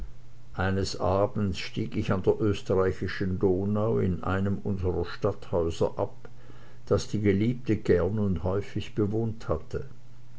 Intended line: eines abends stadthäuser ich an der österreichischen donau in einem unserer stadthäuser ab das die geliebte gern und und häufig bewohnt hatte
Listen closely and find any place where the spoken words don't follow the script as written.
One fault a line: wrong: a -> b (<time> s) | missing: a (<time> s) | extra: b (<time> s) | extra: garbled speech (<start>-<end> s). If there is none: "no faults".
wrong: stadthäuser -> stieg (1.6 s)
missing: und (8.4 s)